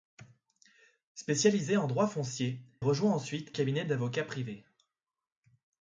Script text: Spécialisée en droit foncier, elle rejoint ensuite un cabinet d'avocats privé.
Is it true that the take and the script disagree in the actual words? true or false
true